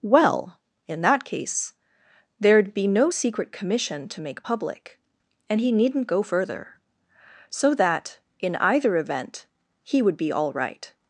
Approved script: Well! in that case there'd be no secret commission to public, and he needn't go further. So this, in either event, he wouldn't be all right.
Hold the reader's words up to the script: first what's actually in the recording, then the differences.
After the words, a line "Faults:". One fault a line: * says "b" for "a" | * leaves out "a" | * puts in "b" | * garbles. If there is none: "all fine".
Well! in that case there'd be no secret commission to make public, and he needn't go further. So that, in either event, he would be all right.
Faults:
* puts in "make"
* says "that" for "this"
* says "would" for "wouldn't"